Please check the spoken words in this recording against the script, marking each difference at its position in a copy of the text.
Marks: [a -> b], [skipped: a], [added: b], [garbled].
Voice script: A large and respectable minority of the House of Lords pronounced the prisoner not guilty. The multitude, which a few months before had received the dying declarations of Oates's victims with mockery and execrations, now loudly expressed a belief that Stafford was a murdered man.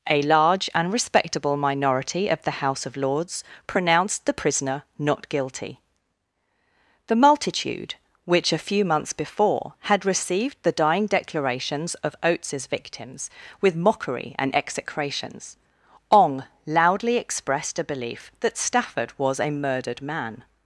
A large and respectable minority of the House of Lords pronounced the prisoner not guilty. The multitude, which a few months before had received the dying declarations of Oates's victims with mockery and execrations, [now -> ong] loudly expressed a belief that Stafford was a murdered man.